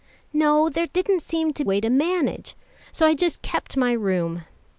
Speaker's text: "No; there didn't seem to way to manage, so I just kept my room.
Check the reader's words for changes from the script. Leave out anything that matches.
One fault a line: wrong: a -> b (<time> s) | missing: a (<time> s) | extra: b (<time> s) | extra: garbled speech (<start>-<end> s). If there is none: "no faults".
no faults